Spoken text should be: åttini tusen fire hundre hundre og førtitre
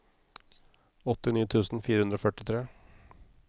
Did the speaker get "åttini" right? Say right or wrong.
right